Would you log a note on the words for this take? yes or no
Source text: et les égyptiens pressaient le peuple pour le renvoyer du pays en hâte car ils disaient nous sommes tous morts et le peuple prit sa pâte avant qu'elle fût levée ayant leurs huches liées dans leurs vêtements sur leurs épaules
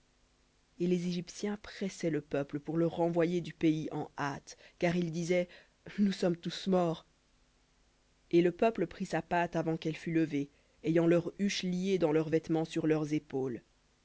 no